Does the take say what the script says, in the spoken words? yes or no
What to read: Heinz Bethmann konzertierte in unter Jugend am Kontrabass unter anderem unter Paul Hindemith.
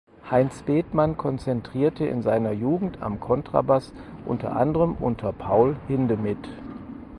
no